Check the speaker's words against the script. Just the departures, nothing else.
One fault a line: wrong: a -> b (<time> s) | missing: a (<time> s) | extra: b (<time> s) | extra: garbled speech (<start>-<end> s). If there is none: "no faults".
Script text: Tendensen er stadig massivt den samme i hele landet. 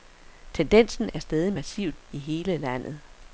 missing: den samme (2.1 s)